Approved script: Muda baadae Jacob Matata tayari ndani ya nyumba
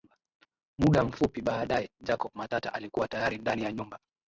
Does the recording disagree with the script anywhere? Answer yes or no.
yes